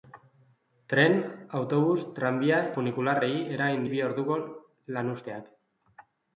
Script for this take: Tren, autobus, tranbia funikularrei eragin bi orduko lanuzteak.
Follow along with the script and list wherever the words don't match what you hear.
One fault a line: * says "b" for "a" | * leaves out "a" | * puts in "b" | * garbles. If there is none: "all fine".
all fine